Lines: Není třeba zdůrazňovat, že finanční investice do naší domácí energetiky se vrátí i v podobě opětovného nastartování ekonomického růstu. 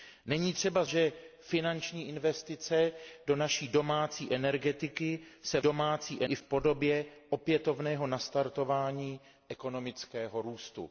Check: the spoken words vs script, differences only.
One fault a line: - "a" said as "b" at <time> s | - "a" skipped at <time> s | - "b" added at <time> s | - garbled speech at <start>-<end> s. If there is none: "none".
- "zdůrazňovat" skipped at 0.8 s
- "vrátí" said as "domácí" at 5.6 s